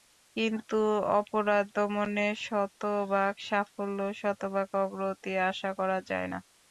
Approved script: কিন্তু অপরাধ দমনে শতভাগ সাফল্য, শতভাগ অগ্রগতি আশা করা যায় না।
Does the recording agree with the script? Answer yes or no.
yes